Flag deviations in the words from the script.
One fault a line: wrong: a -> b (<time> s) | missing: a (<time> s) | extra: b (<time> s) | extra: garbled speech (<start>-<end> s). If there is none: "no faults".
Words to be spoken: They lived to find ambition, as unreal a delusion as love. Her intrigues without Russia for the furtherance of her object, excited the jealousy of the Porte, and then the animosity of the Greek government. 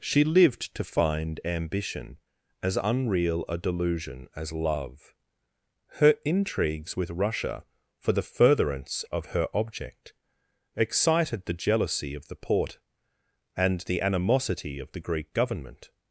wrong: They -> She (0.0 s)
wrong: without -> with (6.9 s)
missing: then (13.8 s)